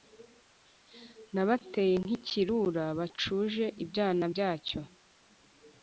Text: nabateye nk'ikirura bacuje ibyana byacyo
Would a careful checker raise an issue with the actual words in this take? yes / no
no